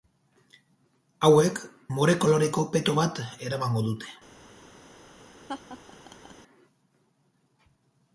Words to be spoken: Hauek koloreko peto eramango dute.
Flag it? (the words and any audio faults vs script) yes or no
yes